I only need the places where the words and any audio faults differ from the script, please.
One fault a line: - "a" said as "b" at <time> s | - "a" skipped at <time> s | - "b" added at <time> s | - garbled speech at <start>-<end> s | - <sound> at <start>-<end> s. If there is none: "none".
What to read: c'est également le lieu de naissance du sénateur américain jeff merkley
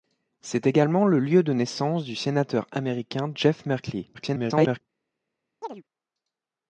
- garbled speech at 4.1-4.8 s
- chirp at 5.6-5.8 s